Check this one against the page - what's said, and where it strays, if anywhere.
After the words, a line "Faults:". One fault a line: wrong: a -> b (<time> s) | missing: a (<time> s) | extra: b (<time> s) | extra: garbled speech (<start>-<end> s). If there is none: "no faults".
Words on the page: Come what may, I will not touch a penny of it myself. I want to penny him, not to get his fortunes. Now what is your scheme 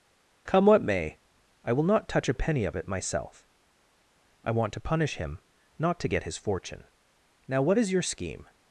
Come what may, I will not touch a penny of it myself. I want to punish him, not to get his fortune. Now what is your scheme
Faults:
wrong: penny -> punish (4.8 s)
wrong: fortunes -> fortune (6.4 s)